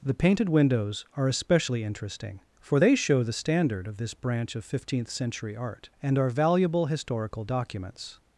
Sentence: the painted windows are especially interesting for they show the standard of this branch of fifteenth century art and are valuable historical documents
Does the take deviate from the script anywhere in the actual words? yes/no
no